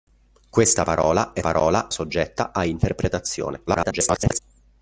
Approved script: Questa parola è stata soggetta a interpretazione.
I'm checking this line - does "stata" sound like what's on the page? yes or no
no